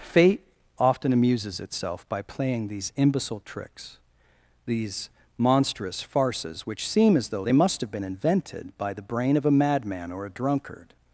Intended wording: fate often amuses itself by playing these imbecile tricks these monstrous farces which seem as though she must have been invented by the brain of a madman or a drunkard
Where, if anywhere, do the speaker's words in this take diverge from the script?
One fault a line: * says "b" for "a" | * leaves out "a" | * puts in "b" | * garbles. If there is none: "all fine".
* says "they" for "she"